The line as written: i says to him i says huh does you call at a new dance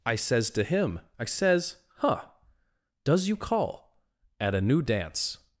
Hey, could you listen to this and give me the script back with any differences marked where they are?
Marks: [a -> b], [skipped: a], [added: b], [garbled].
i says to him i says huh does you call at a new dance